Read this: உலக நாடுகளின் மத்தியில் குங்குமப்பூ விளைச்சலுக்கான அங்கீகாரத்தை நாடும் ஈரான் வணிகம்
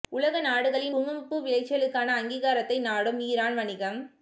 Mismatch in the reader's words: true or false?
true